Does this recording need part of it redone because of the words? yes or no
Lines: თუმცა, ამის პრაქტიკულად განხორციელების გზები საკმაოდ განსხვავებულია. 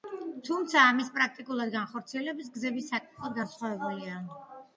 no